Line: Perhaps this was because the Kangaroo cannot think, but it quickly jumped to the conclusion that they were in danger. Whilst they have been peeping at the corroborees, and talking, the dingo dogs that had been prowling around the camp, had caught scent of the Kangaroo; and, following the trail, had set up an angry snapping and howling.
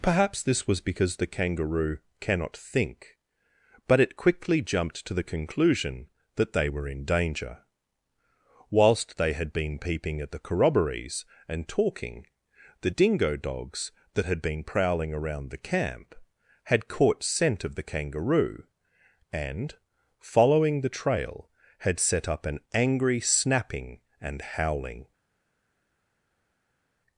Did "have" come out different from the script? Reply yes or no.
yes